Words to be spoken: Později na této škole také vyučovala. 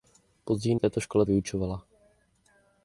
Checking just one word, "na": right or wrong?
wrong